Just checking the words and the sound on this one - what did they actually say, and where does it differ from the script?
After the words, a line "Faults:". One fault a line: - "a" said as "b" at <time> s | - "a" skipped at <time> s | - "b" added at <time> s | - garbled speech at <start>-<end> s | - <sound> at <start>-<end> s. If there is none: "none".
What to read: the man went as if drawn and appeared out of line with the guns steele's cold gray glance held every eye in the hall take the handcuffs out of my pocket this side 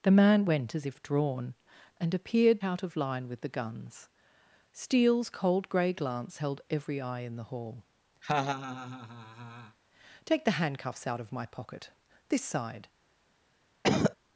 the man went as if drawn and appeared out of line with the guns steele's cold gray glance held every eye in the hall take the handcuffs out of my pocket this side
Faults:
- laugh at 8.2-9.8 s
- cough at 13.8-14.2 s